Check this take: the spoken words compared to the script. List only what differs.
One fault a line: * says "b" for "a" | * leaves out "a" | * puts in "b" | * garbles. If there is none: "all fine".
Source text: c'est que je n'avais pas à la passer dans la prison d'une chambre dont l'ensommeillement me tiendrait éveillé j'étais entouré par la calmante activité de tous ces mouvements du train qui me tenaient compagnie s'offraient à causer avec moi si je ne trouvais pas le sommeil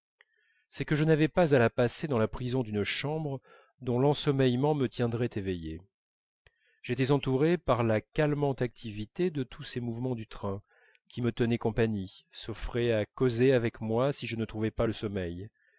all fine